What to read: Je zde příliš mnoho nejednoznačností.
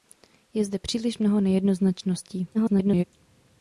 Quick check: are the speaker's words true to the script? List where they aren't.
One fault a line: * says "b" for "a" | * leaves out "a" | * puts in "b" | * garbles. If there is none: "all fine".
* garbles